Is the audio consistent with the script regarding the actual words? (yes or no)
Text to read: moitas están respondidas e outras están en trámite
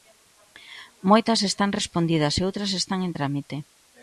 yes